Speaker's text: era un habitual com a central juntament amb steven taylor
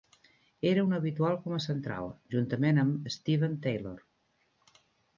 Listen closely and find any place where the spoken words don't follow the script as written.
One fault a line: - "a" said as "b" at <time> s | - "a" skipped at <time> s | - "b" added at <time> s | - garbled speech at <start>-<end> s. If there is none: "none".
none